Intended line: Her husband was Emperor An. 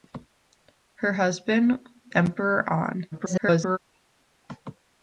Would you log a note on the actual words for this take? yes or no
yes